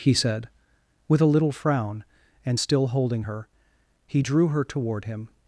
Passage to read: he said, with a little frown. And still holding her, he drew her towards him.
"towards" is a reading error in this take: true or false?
true